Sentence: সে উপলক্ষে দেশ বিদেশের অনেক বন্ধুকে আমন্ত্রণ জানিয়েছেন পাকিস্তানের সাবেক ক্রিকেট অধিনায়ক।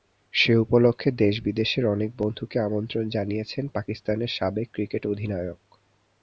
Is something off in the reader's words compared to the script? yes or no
no